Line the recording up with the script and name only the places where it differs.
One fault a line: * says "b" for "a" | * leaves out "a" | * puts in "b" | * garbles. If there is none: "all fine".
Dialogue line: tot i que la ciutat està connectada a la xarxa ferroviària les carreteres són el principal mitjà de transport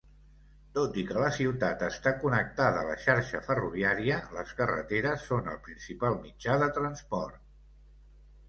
all fine